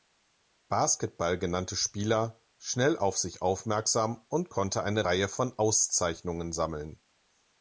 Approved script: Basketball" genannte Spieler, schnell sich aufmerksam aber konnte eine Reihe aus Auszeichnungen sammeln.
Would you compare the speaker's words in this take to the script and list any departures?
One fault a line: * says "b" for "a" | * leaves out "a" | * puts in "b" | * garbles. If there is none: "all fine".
* puts in "auf"
* says "und" for "aber"
* says "von" for "aus"